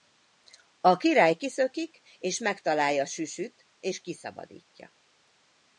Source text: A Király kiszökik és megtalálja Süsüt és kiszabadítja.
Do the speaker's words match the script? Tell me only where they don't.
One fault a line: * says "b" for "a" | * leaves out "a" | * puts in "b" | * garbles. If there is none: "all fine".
all fine